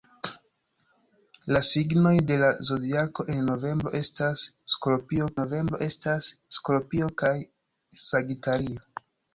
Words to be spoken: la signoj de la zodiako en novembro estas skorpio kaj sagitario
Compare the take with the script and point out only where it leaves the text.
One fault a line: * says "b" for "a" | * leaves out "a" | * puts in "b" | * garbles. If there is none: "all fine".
* puts in "novembro estas skorpio"